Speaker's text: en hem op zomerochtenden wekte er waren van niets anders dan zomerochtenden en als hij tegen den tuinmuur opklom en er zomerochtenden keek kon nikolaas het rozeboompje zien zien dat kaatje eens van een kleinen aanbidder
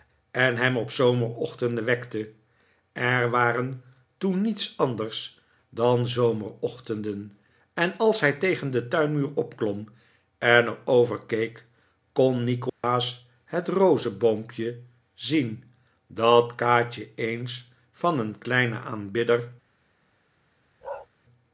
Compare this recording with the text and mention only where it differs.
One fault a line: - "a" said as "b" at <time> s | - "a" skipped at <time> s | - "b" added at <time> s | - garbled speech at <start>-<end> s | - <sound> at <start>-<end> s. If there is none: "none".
- "van" said as "toen" at 4.2 s
- "zomerochtenden" said as "over" at 10.8 s
- dropout at 12.7-12.8 s
- "zien" skipped at 15.6 s
- bark at 20.8-21.1 s